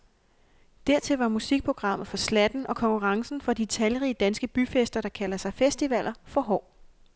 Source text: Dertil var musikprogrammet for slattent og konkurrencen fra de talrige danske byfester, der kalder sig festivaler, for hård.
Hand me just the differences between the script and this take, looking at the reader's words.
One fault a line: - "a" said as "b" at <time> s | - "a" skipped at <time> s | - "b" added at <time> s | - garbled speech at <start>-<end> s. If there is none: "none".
none